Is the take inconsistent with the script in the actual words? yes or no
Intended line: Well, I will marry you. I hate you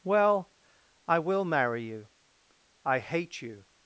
no